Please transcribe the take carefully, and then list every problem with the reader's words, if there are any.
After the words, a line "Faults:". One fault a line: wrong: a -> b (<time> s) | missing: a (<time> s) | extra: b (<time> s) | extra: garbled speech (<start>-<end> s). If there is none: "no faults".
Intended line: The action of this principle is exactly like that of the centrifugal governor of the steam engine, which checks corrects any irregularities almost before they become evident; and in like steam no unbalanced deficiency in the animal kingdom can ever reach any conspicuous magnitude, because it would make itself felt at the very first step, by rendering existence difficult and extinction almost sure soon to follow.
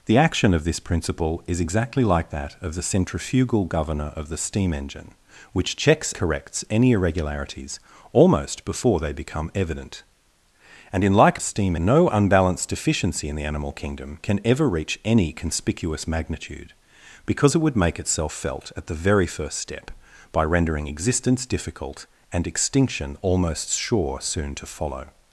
The action of this principle is exactly like that of the centrifugal governor of the steam engine, which checks corrects any irregularities almost before they become evident; and in like steam no unbalanced deficiency in the animal kingdom can ever reach any conspicuous magnitude, because it would make itself felt at the very first step, by rendering existence difficult and extinction almost sure soon to follow.
Faults:
no faults